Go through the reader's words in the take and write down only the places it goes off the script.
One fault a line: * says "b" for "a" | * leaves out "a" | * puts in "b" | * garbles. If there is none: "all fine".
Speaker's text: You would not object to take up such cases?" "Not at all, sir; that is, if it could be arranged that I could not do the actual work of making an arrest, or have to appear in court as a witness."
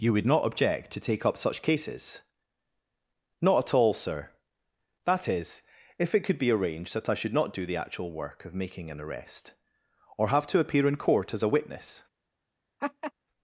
* says "should" for "could"